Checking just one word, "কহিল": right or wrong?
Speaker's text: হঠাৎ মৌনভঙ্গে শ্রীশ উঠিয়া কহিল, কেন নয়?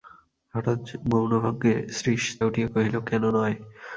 right